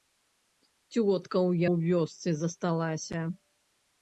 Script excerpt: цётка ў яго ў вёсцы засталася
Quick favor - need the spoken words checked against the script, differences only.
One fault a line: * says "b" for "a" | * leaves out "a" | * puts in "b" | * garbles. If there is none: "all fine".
* leaves out "яго"